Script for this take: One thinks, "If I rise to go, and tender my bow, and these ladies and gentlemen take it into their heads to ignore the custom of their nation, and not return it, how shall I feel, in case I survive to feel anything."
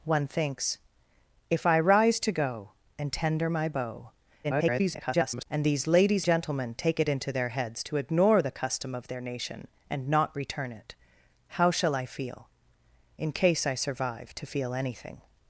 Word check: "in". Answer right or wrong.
right